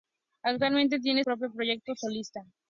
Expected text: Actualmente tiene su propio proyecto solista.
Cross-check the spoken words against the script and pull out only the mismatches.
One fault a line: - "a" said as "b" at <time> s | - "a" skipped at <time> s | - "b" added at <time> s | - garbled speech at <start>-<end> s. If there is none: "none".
- "su" skipped at 1.2 s